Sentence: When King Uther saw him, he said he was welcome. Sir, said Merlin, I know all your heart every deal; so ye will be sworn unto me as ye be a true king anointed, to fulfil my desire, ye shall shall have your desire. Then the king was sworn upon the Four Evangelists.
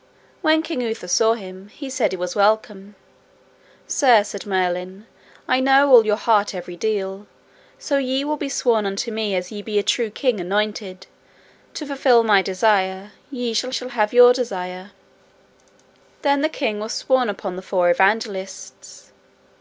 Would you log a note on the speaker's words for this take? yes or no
no